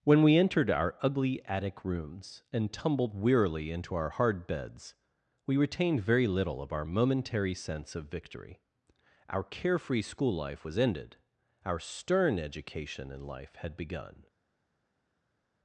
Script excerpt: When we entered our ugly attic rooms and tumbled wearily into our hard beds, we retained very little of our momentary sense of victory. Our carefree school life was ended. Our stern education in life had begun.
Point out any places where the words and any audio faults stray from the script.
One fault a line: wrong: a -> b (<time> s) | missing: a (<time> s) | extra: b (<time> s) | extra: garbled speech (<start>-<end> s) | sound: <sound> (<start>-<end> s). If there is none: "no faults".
no faults